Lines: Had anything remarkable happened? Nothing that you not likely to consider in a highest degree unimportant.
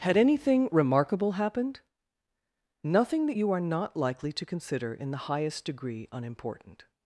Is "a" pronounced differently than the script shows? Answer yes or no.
yes